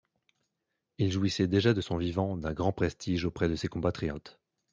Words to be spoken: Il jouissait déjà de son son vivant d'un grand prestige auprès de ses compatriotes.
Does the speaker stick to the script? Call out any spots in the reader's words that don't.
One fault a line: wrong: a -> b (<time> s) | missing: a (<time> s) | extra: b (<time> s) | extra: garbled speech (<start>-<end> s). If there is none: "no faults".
missing: son (2.0 s)